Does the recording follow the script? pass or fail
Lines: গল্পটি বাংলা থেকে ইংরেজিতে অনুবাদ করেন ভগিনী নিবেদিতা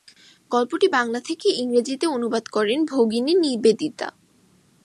pass